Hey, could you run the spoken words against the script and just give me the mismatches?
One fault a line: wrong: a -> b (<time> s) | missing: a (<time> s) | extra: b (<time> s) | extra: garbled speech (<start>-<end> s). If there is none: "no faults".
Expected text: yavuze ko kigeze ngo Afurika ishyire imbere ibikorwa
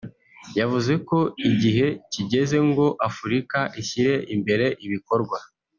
extra: igihe (1.5 s)